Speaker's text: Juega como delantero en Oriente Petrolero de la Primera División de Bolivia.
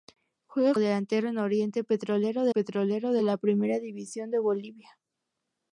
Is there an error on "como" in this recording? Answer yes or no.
yes